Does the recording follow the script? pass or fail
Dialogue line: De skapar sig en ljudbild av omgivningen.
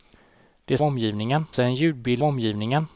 fail